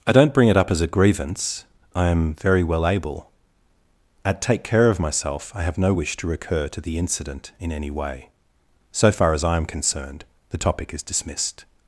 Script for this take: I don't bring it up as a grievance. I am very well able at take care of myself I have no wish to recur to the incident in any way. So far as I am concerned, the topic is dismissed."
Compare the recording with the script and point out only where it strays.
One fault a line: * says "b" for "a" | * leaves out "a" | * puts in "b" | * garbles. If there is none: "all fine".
all fine